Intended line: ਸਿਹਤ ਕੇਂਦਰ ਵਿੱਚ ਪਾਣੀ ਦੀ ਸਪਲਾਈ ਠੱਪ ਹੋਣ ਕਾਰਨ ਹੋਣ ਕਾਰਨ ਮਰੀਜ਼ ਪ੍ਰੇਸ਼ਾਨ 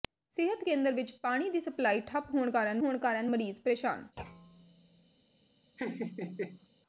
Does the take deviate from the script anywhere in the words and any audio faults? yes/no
yes